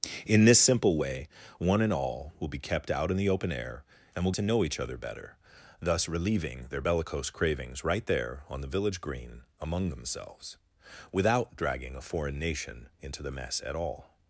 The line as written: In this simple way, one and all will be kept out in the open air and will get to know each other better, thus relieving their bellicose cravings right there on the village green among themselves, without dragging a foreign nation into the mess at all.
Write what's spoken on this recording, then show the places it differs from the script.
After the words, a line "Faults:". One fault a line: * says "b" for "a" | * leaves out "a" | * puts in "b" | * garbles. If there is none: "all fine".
In this simple way, one and all will be kept out in the open air and will to know each other better, thus relieving their bellicose cravings right there on the village green among themselves, without dragging a foreign nation into the mess at all.
Faults:
* leaves out "get"